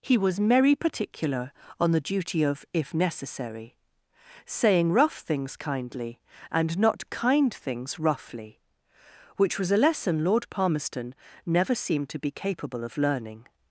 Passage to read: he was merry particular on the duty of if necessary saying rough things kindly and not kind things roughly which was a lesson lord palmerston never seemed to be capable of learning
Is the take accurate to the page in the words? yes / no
yes